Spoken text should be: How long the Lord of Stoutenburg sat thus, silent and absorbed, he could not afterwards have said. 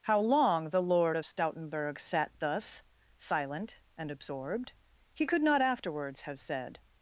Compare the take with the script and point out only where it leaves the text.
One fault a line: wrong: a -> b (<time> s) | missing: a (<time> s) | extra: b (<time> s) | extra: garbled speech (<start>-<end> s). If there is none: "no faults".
no faults